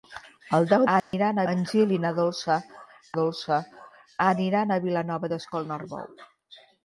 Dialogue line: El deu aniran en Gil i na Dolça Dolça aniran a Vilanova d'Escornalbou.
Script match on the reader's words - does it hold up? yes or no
yes